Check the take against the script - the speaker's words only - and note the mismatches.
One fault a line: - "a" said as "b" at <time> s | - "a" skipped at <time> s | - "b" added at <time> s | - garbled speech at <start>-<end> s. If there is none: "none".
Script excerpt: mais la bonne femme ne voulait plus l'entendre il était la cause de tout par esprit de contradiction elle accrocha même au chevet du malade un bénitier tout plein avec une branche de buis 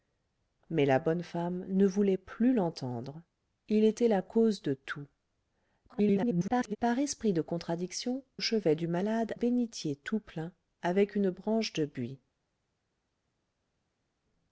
- garbled speech at 5.9-6.8 s
- "elle accrocha même" skipped at 8.2 s
- "un" skipped at 9.3 s